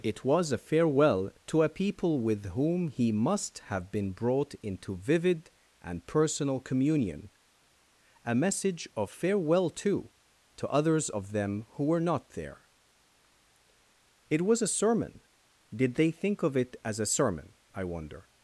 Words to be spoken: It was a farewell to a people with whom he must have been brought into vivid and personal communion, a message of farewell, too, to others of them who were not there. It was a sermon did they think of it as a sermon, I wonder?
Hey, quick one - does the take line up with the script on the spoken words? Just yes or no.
yes